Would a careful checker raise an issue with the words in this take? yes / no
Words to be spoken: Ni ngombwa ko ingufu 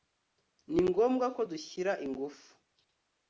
yes